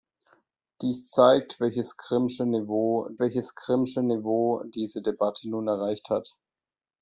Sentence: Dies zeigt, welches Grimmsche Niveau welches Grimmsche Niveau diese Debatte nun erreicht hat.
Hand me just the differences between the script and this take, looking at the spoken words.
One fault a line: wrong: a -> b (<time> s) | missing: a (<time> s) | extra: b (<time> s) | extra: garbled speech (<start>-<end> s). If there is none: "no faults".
no faults